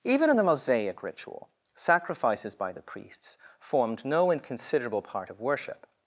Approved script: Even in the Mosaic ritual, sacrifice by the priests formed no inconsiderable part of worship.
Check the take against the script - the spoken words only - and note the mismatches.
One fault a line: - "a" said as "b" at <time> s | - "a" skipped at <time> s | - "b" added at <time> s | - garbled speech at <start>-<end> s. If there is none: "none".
- "sacrifice" said as "sacrifices" at 1.7 s